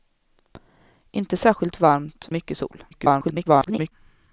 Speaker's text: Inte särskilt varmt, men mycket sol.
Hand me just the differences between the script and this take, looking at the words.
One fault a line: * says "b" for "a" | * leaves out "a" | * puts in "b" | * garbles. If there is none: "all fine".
* leaves out "men"
* garbles